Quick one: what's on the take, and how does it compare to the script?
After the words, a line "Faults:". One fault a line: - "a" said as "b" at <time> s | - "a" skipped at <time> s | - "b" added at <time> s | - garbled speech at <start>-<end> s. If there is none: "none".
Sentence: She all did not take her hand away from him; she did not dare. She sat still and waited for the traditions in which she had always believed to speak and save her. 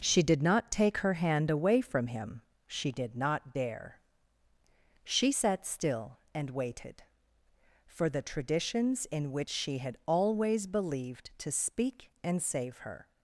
She did not take her hand away from him; she did not dare. She sat still and waited for the traditions in which she had always believed to speak and save her.
Faults:
- "all" skipped at 0.2 s